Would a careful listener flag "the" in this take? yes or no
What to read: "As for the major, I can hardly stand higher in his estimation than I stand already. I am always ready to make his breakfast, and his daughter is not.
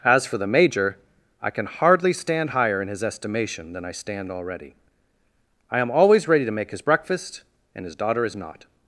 no